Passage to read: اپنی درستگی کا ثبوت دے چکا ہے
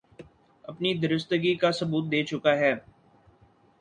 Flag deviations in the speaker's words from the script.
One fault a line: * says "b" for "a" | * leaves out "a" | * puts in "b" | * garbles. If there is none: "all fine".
all fine